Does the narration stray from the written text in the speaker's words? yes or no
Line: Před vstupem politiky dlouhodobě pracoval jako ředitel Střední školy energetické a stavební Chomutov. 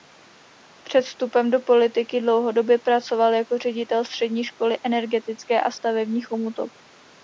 yes